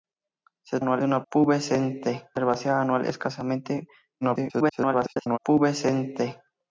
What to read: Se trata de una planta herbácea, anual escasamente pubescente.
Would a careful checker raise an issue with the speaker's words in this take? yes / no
yes